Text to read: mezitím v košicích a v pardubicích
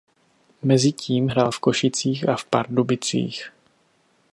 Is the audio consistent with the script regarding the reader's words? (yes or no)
no